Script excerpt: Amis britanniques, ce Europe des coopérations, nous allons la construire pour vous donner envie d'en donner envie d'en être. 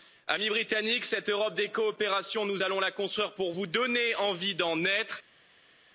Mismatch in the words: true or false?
true